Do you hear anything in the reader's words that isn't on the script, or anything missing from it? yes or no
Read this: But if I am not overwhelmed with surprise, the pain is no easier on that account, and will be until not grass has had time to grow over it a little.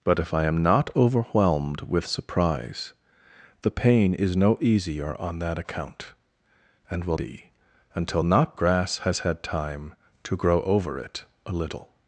no